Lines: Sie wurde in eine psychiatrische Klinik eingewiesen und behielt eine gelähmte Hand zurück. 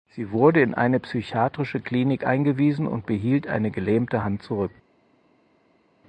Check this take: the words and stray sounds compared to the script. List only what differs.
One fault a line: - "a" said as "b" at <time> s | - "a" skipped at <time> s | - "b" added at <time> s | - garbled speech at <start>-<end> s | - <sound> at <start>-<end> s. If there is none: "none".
none